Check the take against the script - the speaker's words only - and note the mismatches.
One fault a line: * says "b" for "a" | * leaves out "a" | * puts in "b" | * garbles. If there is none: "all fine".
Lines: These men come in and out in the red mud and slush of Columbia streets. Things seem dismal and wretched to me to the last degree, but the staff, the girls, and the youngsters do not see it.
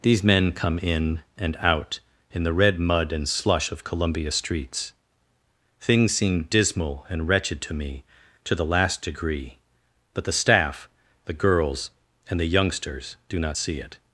all fine